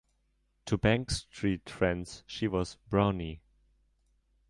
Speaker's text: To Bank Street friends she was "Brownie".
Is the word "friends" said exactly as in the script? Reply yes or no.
yes